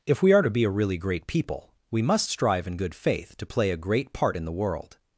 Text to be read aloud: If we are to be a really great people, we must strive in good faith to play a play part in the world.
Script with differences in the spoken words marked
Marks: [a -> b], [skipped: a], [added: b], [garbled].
If we are to be a really great people, we must strive in good faith to play a [play -> great] part in the world.